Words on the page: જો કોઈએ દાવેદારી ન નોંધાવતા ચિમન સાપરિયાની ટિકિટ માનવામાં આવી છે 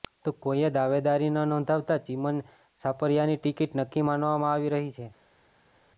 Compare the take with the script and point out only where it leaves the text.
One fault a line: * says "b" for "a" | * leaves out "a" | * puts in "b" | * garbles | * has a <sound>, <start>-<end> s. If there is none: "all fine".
* says "તો" for "જો"
* puts in "નક્કી"
* puts in "રહી"